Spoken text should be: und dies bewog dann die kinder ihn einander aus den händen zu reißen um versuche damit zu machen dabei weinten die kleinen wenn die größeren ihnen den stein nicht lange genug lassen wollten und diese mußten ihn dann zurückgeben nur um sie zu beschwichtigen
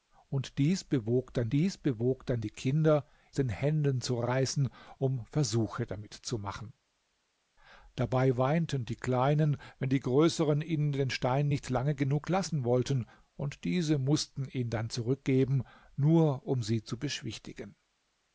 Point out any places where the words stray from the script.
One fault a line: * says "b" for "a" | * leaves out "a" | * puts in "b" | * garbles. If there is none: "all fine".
* says "dies bewog dann die kinder" for "die kinder ihn einander aus"